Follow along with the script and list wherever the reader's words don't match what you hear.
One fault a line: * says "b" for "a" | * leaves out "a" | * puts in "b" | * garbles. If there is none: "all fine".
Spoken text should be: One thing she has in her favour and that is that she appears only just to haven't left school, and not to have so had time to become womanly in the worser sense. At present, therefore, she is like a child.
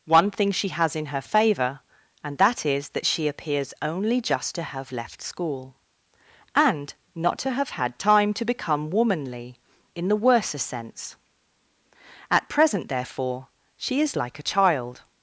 * says "have" for "haven't"
* leaves out "so"